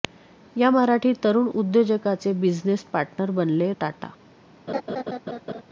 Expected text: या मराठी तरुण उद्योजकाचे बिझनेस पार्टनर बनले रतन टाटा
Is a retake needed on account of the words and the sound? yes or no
yes